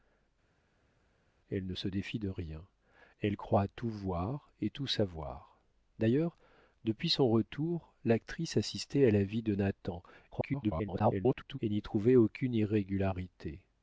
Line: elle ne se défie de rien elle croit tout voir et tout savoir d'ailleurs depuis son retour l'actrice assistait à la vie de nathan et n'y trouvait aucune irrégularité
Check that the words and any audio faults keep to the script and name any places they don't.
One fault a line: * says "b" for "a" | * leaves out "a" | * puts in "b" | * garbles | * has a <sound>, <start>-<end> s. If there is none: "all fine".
* garbles